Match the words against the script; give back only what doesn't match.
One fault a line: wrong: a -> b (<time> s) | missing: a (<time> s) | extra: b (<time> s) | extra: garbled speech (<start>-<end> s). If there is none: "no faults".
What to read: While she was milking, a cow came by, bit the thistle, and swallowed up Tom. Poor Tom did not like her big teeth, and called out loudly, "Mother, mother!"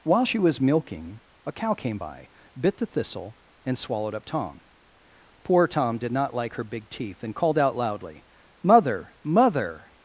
no faults